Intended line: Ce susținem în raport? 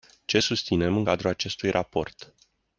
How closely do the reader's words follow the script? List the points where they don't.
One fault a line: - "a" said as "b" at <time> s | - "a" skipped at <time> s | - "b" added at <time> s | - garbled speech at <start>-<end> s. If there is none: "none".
- "cadrul acestui" added at 1.0 s